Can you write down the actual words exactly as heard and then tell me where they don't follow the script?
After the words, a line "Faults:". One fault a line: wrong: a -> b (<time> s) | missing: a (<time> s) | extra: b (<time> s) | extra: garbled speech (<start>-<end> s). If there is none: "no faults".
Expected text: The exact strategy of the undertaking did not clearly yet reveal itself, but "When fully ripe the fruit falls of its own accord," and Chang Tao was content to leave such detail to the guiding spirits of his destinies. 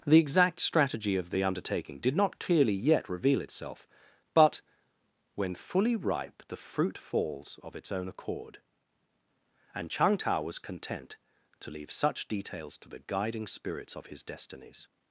The exact strategy of the undertaking did not clearly yet reveal itself, but "When fully ripe the fruit falls of its own accord," and Chang Tao was content to leave such details to the guiding spirits of his destinies.
Faults:
wrong: detail -> details (12.3 s)